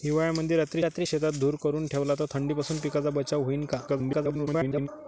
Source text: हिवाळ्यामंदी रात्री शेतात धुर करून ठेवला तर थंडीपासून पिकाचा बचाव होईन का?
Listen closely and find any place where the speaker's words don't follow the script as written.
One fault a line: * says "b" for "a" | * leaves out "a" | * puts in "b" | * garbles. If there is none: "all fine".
* puts in "रात्री"
* garbles